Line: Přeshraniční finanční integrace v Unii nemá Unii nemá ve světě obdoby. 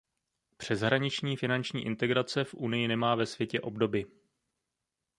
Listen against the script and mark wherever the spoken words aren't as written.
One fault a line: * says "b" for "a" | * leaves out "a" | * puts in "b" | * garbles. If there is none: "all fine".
* leaves out "Unii nemá"